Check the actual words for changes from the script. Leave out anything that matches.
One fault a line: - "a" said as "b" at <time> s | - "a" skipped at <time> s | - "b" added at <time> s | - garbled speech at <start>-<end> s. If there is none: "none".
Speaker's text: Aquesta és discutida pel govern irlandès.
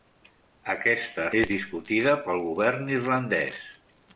none